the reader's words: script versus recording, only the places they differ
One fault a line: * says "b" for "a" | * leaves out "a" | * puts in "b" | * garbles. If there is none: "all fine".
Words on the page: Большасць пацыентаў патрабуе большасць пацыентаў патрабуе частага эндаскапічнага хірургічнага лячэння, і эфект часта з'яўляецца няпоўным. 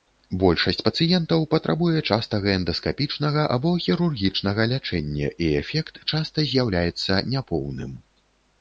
* leaves out "большасць пацыентаў патрабуе"
* puts in "або"